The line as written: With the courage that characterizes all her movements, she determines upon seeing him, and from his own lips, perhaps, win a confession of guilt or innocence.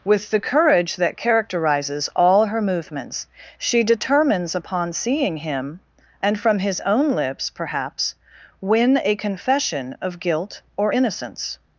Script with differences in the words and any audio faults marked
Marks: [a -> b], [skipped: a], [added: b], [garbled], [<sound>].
With the courage that characterizes all her movements, she determines upon seeing him, and from his own lips, perhaps, win a confession of guilt or innocence.